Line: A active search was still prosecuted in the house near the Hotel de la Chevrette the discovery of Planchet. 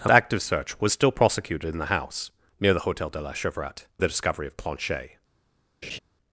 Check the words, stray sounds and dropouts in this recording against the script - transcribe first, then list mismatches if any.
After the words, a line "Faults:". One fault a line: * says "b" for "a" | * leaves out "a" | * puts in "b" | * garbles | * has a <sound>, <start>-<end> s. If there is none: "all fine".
A active search was still prosecuted in the house near the Hotel de la Chevrette the discovery of Planchet.
Faults:
* has a laugh, 5.8-6.0 s